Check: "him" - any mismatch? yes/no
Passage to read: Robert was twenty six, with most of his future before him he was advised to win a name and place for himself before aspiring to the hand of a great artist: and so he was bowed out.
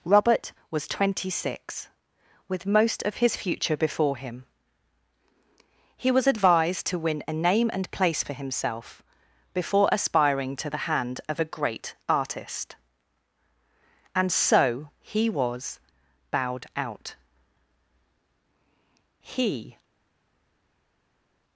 no